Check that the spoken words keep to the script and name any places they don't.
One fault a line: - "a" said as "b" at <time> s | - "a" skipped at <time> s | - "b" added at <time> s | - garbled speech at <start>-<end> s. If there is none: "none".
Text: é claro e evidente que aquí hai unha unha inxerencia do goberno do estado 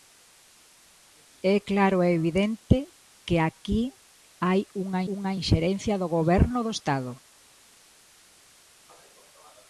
none